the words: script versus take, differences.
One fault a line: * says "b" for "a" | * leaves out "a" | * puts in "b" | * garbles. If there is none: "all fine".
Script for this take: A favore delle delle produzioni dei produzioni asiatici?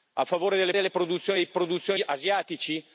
all fine